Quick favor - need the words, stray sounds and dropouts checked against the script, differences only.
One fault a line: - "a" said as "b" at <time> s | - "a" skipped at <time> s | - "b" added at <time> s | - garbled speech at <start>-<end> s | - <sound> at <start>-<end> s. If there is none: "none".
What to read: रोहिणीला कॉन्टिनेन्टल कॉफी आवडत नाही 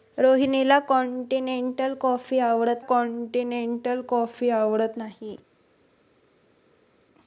- "कॉन्टिनेन्टल कॉफी आवडत" added at 2.8 s